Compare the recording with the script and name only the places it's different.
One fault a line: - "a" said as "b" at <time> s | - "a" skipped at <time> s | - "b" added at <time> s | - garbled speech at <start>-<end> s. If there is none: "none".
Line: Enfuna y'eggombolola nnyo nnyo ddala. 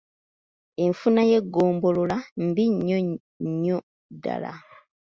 - "mbi" added at 2.5 s